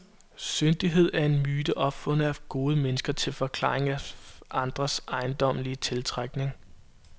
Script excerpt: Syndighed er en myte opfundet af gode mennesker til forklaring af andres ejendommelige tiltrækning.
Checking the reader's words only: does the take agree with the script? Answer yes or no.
yes